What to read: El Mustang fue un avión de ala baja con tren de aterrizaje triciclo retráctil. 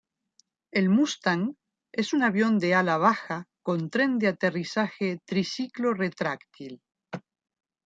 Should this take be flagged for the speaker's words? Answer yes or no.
yes